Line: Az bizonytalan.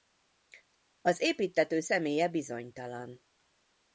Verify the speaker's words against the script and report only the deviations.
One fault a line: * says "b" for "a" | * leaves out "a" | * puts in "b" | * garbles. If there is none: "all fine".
* puts in "építtető személye"